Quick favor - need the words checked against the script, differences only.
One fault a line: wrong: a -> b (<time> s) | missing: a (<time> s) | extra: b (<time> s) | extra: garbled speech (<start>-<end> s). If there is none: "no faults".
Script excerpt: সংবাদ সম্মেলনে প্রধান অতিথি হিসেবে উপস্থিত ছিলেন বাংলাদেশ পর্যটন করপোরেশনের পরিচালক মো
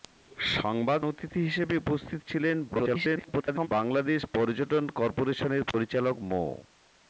missing: সম্মেলনে প্রধান (1.0 s)
extra: garbled speech (2.7-3.7 s)